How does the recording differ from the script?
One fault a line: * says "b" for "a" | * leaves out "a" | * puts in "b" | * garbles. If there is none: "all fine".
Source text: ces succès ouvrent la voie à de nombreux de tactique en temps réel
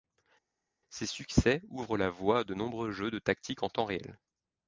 * puts in "jeux"